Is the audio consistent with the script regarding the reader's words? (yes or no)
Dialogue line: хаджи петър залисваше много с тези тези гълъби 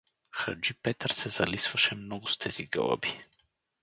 no